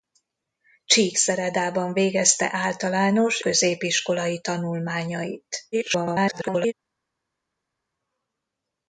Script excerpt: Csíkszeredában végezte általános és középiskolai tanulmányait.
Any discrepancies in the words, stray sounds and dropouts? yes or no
yes